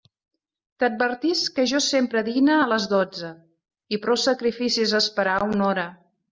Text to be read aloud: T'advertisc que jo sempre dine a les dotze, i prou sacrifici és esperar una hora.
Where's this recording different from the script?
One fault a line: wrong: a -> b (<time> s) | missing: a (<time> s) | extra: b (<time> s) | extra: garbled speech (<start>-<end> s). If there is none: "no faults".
no faults